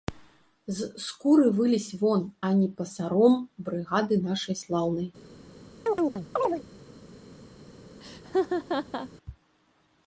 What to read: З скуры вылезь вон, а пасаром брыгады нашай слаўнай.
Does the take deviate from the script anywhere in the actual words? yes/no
yes